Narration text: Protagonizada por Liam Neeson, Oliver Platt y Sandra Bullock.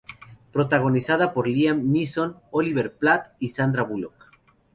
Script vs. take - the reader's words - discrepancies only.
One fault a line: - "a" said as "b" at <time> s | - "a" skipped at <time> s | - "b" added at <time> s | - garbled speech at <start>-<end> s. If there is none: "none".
none